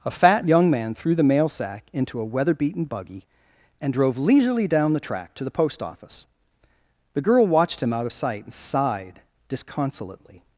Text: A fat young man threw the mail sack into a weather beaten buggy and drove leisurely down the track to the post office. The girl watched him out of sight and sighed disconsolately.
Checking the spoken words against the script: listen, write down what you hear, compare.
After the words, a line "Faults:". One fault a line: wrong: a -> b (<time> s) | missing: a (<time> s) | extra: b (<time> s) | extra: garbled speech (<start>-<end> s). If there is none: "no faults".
A fat young man threw the mail sack into a weather beaten buggy and drove leisurely down the track to the post office. The girl watched him out of sight and sighed disconsolately.
Faults:
no faults